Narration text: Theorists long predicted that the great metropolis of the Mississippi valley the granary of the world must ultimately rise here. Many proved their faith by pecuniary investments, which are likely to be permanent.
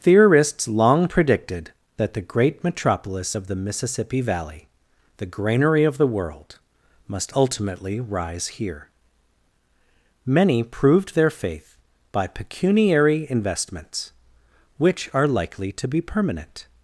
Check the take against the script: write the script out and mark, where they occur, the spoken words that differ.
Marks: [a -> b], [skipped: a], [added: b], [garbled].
Theorists long predicted that the great metropolis of the Mississippi valley the granary of the world must ultimately rise here. Many proved their faith by pecuniary investments, which are likely to be permanent.